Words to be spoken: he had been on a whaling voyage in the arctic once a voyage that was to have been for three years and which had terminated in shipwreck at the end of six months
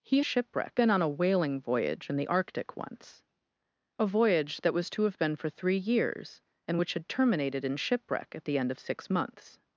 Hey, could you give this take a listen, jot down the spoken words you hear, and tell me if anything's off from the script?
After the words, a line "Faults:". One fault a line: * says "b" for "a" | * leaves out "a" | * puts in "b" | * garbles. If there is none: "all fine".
he shipwreck been on a whaling voyage in the arctic once a voyage that was to have been for three years and which had terminated in shipwreck at the end of six months
Faults:
* says "shipwreck" for "had"